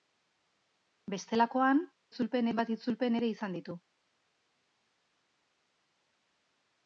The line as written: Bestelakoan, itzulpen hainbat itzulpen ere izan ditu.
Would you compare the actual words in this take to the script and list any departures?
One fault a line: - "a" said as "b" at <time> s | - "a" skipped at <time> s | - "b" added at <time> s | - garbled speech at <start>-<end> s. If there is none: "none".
none